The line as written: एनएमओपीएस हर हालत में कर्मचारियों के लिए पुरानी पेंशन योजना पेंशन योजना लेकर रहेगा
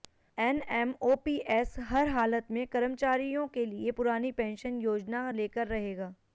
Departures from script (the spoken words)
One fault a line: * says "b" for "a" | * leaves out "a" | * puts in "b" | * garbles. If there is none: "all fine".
* leaves out "पेंशन योजना"